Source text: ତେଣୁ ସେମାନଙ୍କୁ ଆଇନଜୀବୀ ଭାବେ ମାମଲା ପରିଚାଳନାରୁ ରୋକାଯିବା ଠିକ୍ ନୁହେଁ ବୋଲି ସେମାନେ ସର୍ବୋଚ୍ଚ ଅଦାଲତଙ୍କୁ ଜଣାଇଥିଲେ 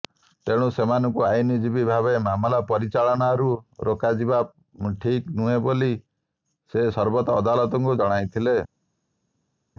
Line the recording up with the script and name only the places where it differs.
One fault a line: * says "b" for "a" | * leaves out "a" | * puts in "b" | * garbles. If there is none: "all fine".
* says "ସେ" for "ସେମାନେ"